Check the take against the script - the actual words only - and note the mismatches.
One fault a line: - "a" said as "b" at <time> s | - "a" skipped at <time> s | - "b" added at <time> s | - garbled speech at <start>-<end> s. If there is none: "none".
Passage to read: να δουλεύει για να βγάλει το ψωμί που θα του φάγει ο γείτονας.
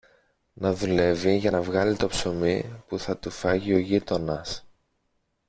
none